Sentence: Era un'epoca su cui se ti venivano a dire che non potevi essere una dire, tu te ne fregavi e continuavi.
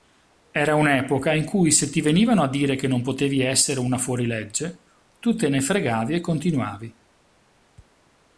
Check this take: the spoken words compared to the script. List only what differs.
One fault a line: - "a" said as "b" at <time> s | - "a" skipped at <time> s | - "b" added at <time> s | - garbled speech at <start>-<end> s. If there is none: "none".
- "su" said as "in" at 1.3 s
- "dire" said as "fuorilegge" at 4.0 s